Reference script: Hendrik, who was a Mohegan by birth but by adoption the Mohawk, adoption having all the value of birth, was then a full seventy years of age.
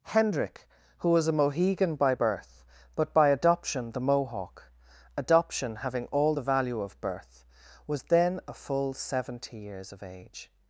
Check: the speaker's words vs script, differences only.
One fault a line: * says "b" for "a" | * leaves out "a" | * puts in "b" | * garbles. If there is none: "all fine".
all fine